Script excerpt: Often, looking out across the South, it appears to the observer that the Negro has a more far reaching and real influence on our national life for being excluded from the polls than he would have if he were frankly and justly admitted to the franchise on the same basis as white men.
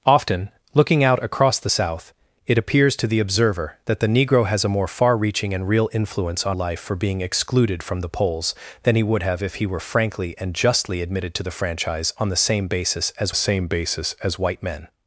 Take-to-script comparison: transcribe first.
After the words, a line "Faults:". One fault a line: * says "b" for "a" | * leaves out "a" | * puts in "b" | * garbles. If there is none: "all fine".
Often, looking out across the South, it appears to the observer that the Negro has a more far reaching and real influence on life for being excluded from the polls than he would have if he were frankly and justly admitted to the franchise on the same basis as same basis as white men.
Faults:
* leaves out "our national"
* puts in "same basis as"